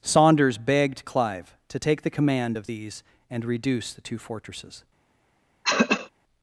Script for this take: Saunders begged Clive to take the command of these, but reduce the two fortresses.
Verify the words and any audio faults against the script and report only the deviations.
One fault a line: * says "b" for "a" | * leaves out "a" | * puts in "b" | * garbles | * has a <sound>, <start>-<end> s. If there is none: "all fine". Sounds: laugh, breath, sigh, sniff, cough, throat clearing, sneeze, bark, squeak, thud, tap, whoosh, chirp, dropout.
* says "and" for "but"
* has a throat clearing, 5.6-6.1 s